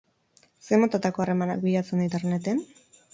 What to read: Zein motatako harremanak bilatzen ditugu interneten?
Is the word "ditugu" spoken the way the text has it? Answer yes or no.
no